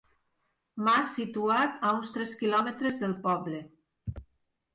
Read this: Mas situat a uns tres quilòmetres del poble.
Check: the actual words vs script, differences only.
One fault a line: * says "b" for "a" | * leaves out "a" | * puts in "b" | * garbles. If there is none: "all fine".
all fine